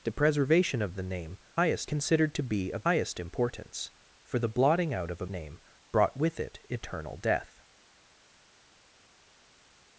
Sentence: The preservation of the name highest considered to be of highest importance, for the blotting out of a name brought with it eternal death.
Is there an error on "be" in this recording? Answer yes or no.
no